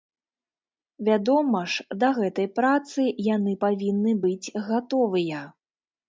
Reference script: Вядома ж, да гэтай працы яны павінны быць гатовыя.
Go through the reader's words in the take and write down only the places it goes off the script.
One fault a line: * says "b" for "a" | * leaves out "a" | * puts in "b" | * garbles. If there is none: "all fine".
all fine